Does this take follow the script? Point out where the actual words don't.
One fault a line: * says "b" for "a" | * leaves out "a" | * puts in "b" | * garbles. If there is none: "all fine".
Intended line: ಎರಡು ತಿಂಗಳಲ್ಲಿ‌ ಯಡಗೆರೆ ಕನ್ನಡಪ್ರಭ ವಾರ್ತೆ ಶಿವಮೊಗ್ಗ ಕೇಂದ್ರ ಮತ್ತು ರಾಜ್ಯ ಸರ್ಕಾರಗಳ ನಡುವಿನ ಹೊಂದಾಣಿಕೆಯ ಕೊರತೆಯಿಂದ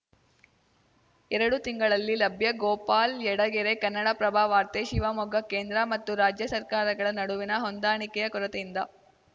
* puts in "ಲಭ್ಯ ಗೋಪಾಲ್"